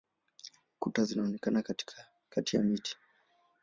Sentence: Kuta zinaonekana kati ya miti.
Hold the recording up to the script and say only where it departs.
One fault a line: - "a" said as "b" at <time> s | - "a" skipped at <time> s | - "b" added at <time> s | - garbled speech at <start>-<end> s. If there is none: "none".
none